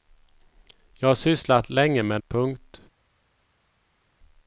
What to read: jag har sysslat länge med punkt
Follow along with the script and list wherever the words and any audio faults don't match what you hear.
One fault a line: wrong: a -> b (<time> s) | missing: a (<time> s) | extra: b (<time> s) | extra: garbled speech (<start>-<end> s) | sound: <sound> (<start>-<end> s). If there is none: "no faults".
no faults